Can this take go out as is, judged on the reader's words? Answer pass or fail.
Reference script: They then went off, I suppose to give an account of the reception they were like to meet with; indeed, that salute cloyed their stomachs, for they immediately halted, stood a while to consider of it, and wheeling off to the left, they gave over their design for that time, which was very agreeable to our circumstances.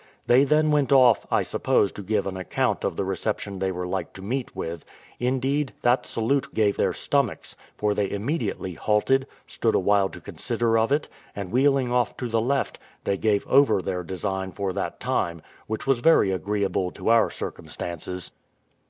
fail